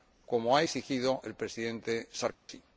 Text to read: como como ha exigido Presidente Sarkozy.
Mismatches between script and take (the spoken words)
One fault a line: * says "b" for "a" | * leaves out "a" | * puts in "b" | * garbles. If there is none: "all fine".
* leaves out "como"
* puts in "el"